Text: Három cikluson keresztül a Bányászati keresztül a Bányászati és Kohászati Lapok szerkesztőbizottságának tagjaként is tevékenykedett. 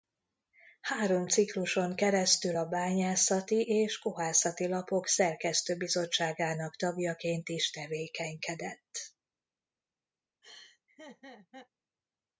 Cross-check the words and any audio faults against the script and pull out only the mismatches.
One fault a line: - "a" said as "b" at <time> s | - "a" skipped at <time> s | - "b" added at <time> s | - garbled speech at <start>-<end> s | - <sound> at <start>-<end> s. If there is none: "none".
- "keresztül a Bányászati" skipped at 3.6 s
- laugh at 10.4-11.7 s